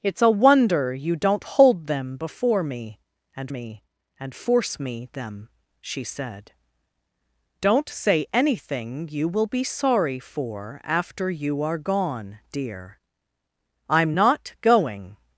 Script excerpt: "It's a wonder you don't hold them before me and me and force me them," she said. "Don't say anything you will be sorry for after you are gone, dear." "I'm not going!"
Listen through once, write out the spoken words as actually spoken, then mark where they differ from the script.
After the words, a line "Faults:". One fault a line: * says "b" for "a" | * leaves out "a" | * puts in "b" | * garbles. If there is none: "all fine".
"It's a wonder you don't hold them before me and me and force me them," she said. "Don't say anything you will be sorry for after you are gone, dear." "I'm not going!"
Faults:
all fine